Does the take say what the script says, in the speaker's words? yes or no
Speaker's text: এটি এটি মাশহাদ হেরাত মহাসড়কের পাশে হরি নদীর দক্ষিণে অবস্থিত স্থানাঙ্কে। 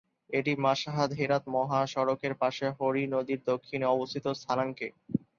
no